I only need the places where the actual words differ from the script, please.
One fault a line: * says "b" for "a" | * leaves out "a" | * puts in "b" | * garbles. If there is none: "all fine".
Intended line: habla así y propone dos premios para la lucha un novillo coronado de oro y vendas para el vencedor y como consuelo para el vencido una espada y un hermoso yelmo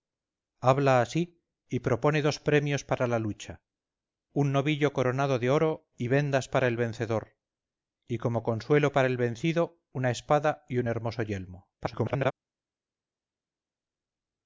* garbles